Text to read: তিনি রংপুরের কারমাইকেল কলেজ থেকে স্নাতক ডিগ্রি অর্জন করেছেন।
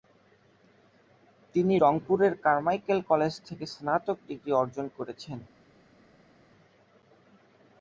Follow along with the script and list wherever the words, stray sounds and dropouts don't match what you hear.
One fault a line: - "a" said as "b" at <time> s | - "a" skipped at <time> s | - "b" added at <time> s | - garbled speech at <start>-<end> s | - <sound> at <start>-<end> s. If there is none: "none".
none